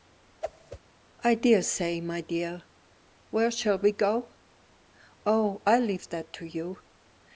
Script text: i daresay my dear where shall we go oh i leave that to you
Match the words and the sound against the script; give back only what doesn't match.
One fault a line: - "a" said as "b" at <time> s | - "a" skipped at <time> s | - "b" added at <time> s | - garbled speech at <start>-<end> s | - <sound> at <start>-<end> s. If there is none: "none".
- whoosh at 0.4-0.8 s